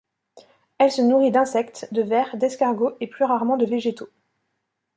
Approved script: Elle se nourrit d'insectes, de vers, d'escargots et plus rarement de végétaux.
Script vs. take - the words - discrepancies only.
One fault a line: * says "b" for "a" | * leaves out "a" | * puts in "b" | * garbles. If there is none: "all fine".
all fine